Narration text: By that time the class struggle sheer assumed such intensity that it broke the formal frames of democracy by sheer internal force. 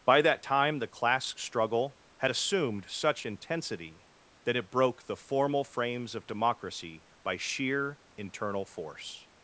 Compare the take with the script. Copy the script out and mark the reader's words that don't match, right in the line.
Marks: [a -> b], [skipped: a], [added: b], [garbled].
By that time the class struggle [sheer -> had] assumed such intensity that it broke the formal frames of democracy by sheer internal force.